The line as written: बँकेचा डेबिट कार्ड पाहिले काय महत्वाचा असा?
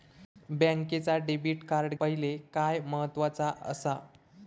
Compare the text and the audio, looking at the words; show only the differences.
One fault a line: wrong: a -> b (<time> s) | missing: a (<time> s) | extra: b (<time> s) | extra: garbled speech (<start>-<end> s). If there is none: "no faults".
no faults